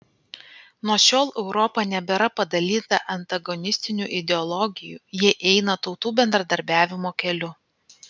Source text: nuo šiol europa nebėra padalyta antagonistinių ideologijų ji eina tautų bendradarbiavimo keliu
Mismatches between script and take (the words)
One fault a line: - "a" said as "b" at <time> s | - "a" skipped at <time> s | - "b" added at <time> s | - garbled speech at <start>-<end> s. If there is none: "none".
none